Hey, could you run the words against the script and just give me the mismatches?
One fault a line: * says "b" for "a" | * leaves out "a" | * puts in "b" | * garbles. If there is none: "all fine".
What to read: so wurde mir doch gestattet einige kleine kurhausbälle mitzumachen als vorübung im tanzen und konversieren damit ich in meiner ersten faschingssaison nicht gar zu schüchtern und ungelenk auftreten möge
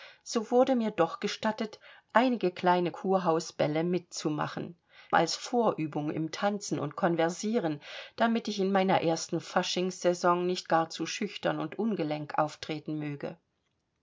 all fine